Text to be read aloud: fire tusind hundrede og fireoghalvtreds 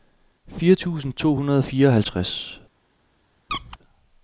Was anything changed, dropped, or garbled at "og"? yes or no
no